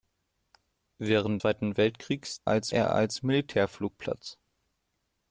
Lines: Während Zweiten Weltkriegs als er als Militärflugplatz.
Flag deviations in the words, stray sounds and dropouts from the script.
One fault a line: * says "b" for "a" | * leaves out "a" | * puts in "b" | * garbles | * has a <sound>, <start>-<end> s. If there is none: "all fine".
all fine